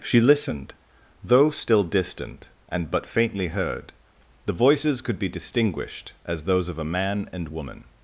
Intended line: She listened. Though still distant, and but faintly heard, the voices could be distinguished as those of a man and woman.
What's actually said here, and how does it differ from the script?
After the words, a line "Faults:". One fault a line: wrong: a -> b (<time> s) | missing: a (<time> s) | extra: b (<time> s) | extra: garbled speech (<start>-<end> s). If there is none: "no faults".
She listened. Though still distant, and but faintly heard, the voices could be distinguished as those of a man and woman.
Faults:
no faults